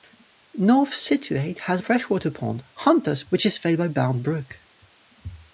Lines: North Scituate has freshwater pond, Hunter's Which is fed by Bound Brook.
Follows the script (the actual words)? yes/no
yes